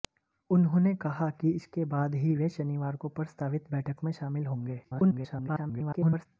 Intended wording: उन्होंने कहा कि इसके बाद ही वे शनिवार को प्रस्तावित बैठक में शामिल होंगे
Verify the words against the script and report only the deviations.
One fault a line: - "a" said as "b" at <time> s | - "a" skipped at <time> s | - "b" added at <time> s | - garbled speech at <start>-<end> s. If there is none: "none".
- garbled speech at 4.8-6.3 s